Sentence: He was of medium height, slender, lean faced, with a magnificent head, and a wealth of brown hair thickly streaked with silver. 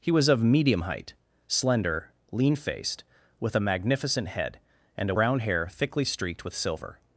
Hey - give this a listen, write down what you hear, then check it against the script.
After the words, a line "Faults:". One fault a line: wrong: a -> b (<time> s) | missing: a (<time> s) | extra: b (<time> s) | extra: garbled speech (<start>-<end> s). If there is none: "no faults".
He was of medium height, slender, lean faced, with a magnificent head, and a brown hair thickly streaked with silver.
Faults:
missing: wealth of (5.2 s)